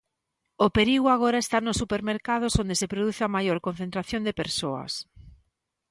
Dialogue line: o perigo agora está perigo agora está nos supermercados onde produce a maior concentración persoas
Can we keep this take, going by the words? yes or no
no